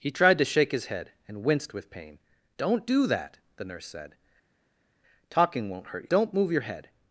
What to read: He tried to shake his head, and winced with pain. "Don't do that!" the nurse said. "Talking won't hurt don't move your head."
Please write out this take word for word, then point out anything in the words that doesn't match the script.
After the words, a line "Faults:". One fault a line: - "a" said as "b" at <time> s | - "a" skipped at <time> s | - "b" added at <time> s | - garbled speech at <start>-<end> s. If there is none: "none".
He tried to shake his head, and winced with pain. "Don't do that!" the nurse said. "Talking won't hurt don't move your head."
Faults:
none